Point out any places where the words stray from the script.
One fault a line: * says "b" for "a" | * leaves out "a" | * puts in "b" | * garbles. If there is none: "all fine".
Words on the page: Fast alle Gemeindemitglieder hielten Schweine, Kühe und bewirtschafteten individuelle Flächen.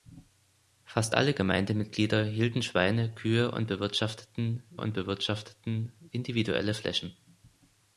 * puts in "und bewirtschafteten"